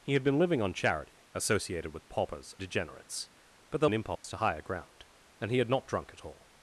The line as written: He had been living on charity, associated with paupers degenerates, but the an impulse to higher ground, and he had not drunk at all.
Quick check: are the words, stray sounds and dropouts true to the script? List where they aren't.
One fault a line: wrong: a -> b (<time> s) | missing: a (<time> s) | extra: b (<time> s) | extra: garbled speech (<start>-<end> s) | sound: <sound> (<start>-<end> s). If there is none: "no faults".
sound: dropout (4.2-4.2 s)